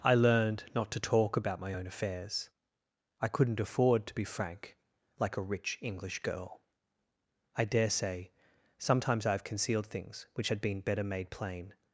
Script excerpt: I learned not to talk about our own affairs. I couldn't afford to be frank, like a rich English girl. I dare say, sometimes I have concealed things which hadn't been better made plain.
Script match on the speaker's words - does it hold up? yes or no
no